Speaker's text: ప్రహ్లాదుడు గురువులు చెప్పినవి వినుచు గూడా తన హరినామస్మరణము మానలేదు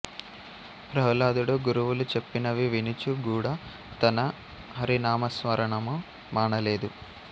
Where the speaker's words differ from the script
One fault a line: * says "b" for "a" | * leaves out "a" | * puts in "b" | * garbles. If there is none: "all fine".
all fine